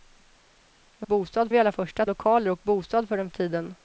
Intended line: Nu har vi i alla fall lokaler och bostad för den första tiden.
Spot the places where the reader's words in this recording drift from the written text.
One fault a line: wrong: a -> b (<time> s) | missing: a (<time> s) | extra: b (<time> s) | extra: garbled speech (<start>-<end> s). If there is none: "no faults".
wrong: har -> bostad (1.1 s)
wrong: fall -> första (1.7 s)
missing: första (3.3 s)